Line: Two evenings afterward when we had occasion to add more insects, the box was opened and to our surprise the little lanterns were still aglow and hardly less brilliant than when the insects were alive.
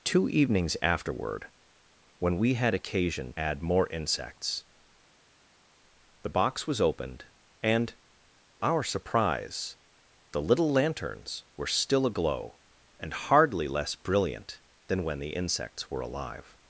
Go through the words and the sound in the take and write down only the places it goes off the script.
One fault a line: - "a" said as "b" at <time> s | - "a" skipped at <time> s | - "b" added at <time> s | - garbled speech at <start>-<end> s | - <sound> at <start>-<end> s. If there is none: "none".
- "to" skipped at 3.3 s
- "to" skipped at 7.9 s